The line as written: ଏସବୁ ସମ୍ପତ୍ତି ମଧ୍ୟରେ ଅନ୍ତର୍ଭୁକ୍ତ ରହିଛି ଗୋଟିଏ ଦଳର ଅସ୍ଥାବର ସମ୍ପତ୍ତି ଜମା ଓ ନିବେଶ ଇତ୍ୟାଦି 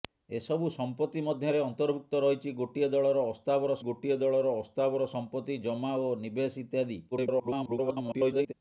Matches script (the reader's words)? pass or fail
fail